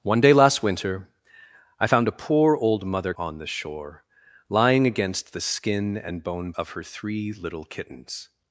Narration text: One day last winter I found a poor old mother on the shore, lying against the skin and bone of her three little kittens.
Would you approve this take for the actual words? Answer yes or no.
yes